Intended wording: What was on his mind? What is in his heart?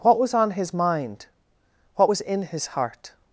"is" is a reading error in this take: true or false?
true